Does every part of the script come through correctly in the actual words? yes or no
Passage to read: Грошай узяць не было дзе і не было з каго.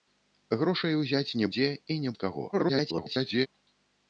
no